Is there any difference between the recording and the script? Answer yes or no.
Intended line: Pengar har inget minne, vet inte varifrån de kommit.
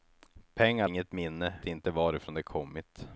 yes